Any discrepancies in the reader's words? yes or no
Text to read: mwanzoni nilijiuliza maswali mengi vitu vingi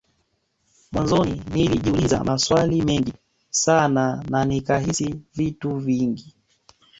yes